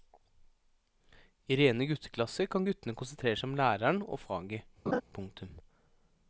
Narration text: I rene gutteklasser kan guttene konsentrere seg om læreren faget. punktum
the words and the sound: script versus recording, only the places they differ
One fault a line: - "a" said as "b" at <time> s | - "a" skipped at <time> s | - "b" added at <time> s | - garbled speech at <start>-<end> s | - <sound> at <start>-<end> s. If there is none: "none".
- "og" added at 4.1 s
- laugh at 4.9-5.0 s